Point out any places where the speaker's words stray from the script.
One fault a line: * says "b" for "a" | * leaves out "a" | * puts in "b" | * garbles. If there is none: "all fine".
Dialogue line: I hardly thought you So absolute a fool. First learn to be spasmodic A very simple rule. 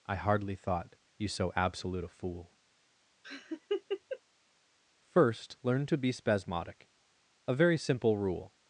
all fine